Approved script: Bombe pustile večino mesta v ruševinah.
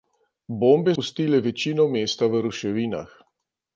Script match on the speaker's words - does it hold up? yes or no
yes